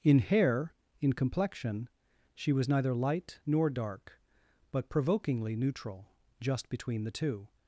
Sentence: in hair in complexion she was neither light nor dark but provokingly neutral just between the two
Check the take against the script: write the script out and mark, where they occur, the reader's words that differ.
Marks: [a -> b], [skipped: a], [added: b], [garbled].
in hair in complexion she was neither light nor dark but provokingly neutral just between the two